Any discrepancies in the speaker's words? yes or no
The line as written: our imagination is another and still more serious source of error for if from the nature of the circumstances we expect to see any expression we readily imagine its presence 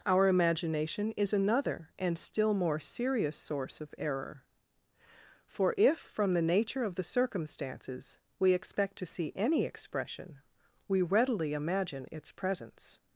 no